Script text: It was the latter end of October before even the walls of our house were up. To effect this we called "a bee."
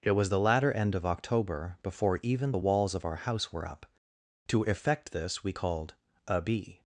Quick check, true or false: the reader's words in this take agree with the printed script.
true